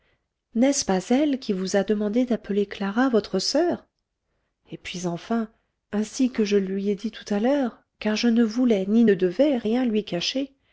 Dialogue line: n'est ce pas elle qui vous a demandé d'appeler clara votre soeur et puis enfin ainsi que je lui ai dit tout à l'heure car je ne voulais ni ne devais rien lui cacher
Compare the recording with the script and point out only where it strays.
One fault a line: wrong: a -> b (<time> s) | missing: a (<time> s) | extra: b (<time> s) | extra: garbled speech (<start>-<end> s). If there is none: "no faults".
no faults